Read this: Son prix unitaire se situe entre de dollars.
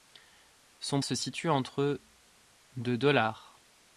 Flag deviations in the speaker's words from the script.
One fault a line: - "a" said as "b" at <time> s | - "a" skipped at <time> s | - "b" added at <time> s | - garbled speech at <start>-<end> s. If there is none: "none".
- "prix unitaire" skipped at 1.0 s